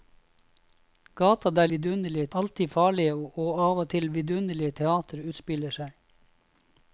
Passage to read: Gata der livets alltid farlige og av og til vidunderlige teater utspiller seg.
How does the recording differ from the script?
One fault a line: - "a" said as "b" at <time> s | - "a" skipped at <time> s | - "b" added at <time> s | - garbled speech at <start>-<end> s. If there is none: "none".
- "livets" said as "vidunderlige" at 1.7 s